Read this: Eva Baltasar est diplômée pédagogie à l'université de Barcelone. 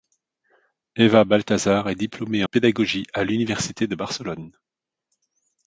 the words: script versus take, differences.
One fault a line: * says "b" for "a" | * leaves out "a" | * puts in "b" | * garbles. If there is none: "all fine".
all fine